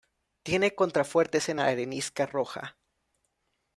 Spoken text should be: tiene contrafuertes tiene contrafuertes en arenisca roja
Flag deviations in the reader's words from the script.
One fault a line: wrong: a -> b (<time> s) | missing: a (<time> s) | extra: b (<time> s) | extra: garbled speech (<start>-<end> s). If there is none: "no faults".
missing: tiene contrafuertes (1.5 s)